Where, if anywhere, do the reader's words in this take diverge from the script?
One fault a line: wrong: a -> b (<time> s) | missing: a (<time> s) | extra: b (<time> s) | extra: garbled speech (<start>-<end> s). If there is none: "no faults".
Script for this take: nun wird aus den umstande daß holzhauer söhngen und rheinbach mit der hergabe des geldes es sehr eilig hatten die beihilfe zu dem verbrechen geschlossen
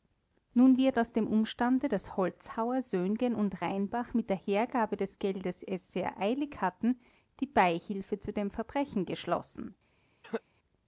wrong: den -> dem (1.1 s)